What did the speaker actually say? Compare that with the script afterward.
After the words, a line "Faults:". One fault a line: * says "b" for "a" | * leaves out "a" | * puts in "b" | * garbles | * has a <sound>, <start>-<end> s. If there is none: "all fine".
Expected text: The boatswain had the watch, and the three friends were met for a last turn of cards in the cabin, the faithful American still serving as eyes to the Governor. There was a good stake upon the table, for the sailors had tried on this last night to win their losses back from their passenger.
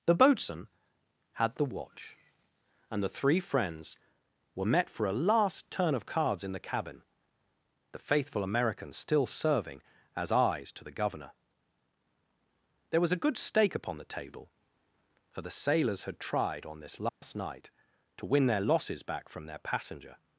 The boatswain had the watch, and the three friends were met for a last turn of cards in the cabin, the faithful American still serving as eyes to the Governor. There was a good stake upon the table, for the sailors had tried on this last night to win their losses back from their passenger.
Faults:
* has a dropout, 17.1-17.2 s